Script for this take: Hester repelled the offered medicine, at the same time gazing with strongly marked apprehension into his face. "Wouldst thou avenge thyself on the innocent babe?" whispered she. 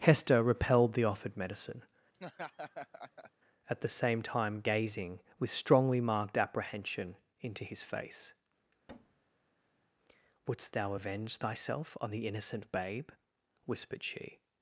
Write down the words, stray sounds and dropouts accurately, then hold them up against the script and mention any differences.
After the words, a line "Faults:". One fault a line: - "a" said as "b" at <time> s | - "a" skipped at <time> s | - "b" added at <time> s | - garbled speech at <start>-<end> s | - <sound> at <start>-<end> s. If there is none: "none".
Hester repelled the offered medicine, at the same time gazing with strongly marked apprehension into his face. "Wouldst thou avenge thyself on the innocent babe?" whispered she.
Faults:
- laugh at 2.1-3.3 s
- thud at 8.9-9.9 s